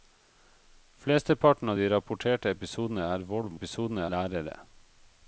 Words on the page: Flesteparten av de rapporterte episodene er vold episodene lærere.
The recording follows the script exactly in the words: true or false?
true